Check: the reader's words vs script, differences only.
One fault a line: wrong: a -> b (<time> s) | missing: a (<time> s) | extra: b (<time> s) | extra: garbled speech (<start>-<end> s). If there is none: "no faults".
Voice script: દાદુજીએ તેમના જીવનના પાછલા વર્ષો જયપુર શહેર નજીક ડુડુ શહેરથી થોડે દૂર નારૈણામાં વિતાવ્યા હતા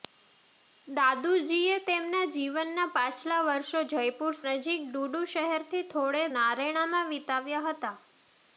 missing: શહેર (4.4 s)
missing: દૂર (6.2 s)